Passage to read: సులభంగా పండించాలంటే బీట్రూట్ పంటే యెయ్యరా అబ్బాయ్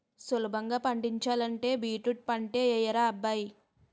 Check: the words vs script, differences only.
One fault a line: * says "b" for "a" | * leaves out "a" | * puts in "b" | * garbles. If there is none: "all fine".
all fine